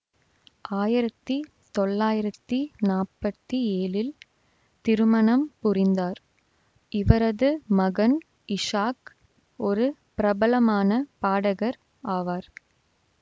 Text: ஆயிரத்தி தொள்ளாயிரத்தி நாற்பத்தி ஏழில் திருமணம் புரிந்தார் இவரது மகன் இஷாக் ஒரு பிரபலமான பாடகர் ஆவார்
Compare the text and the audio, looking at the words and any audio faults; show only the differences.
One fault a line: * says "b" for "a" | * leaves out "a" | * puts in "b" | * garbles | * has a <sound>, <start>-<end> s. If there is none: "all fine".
all fine